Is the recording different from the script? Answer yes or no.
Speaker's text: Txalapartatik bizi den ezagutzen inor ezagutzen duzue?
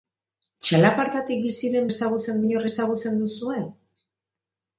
no